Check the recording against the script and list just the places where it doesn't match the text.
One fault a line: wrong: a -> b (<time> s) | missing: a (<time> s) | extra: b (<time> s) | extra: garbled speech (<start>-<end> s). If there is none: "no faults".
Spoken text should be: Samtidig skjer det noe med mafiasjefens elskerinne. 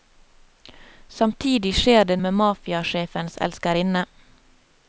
missing: noe (2.2 s)